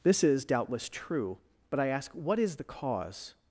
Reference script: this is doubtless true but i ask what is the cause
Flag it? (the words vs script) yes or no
no